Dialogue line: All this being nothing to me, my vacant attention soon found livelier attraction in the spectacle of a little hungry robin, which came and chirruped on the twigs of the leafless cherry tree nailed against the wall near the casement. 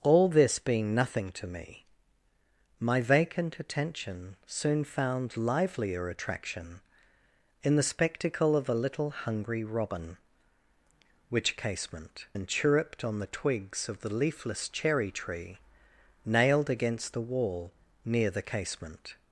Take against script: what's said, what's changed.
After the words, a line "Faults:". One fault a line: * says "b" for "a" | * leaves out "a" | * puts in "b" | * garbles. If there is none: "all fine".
All this being nothing to me, my vacant attention soon found livelier attraction in the spectacle of a little hungry robin, which casement and chirruped on the twigs of the leafless cherry tree nailed against the wall near the casement.
Faults:
* says "casement" for "came"